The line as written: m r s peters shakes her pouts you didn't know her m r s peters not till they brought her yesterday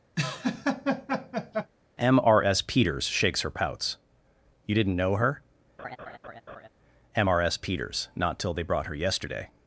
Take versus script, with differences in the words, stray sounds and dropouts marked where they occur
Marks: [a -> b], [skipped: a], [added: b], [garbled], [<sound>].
[laugh] m r s peters shakes her pouts you didn't know her [laugh] m r s peters not till they brought her yesterday